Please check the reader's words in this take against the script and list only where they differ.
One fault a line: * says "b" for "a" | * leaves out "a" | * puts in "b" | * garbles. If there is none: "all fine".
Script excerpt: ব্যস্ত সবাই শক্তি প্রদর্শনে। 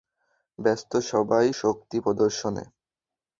all fine